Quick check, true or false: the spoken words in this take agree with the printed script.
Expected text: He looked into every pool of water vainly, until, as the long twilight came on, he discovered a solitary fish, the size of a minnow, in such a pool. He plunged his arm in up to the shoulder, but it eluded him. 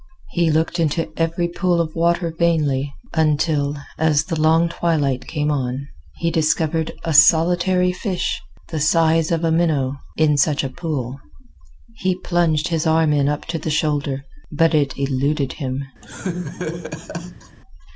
true